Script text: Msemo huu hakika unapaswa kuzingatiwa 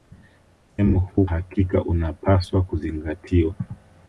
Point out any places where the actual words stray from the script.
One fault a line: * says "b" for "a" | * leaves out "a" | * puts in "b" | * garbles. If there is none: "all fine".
all fine